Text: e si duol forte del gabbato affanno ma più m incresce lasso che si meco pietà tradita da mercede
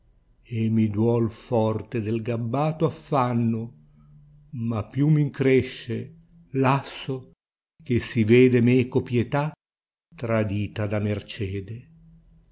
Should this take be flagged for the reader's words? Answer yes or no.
yes